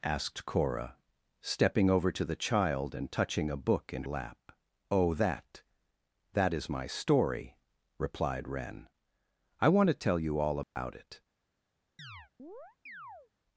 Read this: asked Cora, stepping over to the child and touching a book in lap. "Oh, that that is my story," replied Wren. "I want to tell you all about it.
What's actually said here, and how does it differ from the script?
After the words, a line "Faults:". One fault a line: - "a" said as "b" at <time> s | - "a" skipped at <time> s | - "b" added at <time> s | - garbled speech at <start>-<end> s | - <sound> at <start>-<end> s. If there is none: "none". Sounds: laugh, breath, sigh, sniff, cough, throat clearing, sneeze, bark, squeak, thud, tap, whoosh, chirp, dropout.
asked Cora, stepping over to the child and touching a book in lap. "Oh, that that is my story," replied Wren. "I want to tell you all about it.
Faults:
- dropout at 10.6-10.8 s
- chirp at 12.0-13.3 s